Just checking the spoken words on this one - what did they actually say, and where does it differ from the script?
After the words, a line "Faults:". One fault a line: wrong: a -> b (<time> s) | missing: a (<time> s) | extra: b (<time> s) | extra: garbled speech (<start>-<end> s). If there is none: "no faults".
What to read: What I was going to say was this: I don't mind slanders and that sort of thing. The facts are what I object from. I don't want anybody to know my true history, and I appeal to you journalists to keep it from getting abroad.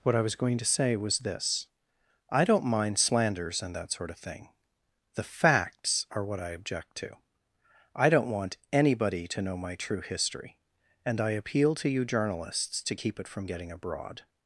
What I was going to say was this: I don't mind slanders and that sort of thing. The facts are what I object to. I don't want anybody to know my true history, and I appeal to you journalists to keep it from getting abroad.
Faults:
wrong: from -> to (7.0 s)